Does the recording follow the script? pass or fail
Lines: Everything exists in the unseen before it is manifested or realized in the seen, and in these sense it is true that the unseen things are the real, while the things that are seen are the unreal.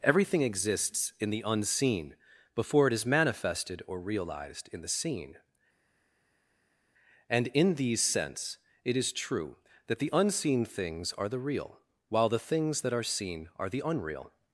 pass